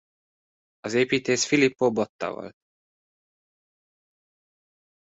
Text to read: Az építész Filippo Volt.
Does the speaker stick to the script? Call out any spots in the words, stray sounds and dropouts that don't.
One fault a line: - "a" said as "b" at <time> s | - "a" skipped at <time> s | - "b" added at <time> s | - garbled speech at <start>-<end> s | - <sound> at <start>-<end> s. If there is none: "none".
- "Botta" added at 1.9 s